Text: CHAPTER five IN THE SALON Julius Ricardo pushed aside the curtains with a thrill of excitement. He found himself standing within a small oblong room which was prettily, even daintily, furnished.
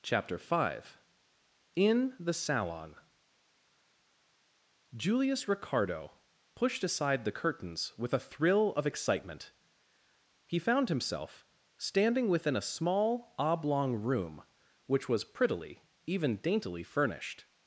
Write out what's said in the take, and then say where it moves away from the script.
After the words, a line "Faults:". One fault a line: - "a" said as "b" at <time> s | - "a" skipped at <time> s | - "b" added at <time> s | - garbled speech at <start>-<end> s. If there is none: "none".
CHAPTER five IN THE SALON Julius Ricardo pushed aside the curtains with a thrill of excitement. He found himself standing within a small oblong room which was prettily, even daintily, furnished.
Faults:
none